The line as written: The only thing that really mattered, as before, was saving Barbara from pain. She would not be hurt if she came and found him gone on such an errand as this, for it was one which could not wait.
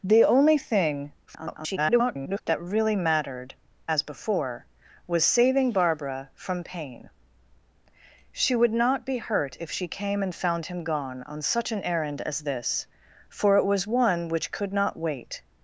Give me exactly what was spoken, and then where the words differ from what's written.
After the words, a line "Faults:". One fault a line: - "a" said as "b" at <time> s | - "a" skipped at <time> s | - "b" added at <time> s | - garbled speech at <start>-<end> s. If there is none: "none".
The only thing [garbled] that really mattered, as before, was saving Barbara from pain. She would not be hurt if she came and found him gone on such an errand as this, for it was one which could not wait.
Faults:
- garbled speech at 1.3-2.4 s